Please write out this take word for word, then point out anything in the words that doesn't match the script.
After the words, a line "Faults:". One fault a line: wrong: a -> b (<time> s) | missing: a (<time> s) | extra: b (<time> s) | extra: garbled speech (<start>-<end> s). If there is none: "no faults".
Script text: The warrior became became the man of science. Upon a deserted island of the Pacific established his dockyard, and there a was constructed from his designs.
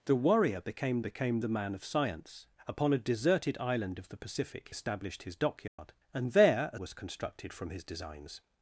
The warrior became became the man of science. Upon a deserted island of the Pacific established his dockyard, and there a was constructed from his designs.
Faults:
no faults